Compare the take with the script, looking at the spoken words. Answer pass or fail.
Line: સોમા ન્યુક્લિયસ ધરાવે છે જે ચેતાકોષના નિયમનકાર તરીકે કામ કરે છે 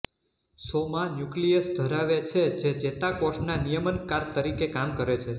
pass